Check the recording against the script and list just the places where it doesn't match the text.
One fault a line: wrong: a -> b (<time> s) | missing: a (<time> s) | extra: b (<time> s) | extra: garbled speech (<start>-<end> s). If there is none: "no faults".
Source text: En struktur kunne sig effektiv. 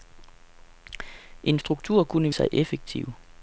no faults